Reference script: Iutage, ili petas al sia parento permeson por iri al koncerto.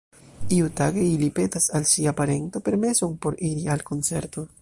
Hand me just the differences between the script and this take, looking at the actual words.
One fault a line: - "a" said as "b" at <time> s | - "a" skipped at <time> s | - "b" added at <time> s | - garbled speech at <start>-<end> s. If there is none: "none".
none